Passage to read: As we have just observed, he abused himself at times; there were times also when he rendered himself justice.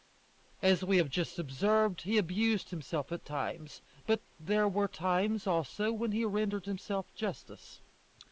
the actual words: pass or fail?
fail